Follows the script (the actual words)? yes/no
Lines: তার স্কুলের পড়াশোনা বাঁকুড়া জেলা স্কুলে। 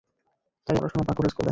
no